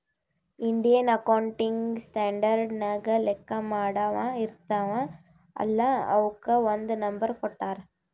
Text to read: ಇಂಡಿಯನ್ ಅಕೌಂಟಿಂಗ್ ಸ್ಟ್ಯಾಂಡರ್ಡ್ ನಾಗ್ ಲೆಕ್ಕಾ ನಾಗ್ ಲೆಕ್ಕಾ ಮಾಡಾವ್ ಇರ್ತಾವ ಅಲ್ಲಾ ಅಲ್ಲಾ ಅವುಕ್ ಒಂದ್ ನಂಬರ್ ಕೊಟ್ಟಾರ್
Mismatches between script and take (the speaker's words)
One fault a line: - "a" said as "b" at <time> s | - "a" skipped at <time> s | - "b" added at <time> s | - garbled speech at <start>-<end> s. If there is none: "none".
- "ನಾಗ್ ಲೆಕ್ಕಾ" skipped at 3.6 s
- "ಅಲ್ಲಾ" skipped at 5.9 s